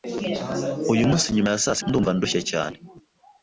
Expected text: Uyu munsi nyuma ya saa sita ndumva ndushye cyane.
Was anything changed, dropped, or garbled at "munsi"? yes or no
no